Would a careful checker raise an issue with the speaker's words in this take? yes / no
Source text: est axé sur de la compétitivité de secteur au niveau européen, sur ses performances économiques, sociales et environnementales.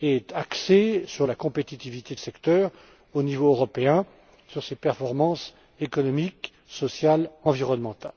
no